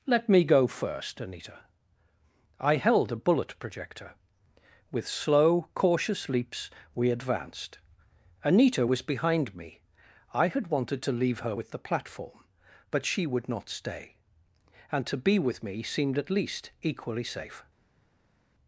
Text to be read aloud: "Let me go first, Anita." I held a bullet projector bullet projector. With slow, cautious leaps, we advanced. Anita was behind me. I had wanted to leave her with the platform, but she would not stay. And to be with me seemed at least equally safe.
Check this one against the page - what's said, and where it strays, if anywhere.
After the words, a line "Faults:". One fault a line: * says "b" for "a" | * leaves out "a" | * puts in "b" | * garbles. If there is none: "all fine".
"Let me go first, Anita." I held a bullet projector. With slow, cautious leaps, we advanced. Anita was behind me. I had wanted to leave her with the platform, but she would not stay. And to be with me seemed at least equally safe.
Faults:
* leaves out "bullet projector"